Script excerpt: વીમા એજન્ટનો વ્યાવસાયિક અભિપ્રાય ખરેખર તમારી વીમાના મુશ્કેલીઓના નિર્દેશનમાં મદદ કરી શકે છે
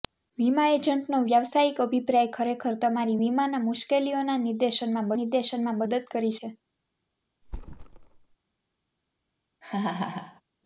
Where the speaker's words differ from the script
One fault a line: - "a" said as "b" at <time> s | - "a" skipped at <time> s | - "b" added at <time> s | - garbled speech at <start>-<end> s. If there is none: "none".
- "નિર્દેશનમાં" added at 5.2 s
- "શકે" skipped at 6.4 s